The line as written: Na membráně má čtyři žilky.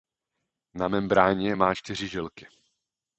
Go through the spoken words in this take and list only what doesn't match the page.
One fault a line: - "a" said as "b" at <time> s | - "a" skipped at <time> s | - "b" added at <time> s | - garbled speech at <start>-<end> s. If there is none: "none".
none